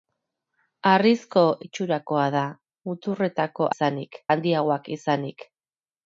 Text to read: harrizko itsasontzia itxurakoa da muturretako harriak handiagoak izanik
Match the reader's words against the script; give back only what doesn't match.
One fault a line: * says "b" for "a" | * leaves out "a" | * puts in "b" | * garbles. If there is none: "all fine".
* leaves out "itsasontzia"
* says "izanik" for "harriak"